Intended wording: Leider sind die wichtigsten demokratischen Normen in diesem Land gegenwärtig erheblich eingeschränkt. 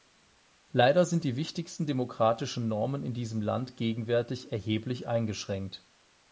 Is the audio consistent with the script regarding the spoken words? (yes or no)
yes